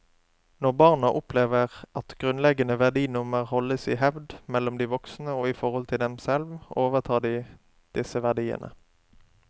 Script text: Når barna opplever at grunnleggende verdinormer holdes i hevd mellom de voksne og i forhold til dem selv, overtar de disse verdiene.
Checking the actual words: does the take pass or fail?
pass